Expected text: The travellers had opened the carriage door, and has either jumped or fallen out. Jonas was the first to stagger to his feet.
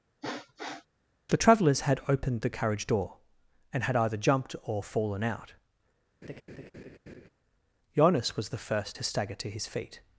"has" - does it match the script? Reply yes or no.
no